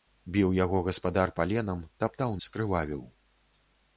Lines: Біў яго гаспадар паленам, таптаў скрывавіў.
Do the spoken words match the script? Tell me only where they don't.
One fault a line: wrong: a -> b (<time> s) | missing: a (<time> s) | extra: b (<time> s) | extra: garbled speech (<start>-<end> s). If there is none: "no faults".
no faults